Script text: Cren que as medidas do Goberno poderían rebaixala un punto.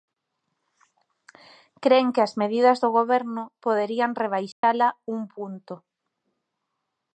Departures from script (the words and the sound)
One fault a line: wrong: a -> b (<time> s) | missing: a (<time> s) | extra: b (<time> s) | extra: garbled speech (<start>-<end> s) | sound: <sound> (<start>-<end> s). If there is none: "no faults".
sound: dropout (4.5-4.6 s)